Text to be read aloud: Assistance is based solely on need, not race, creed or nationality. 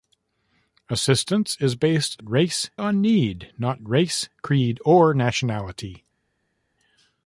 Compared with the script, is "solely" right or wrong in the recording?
wrong